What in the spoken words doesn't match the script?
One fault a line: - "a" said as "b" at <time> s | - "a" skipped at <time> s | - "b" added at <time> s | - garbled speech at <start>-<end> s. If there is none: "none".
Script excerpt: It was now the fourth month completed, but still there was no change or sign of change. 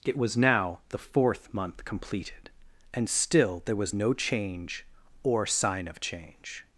- "but" said as "and" at 2.9 s